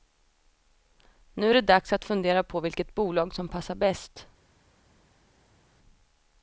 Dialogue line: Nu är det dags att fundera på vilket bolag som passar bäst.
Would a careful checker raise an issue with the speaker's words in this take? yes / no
no